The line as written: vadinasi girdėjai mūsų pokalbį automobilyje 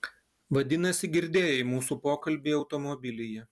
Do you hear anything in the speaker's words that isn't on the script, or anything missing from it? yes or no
no